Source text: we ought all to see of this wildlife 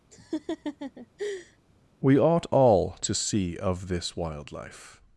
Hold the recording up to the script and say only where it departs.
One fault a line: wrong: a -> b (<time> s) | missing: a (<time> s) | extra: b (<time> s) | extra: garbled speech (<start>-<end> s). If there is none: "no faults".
no faults